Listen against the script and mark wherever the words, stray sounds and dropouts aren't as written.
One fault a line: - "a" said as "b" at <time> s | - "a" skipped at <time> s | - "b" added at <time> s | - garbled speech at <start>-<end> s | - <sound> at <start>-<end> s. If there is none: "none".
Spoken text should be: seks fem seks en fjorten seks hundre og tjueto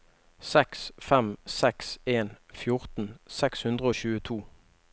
none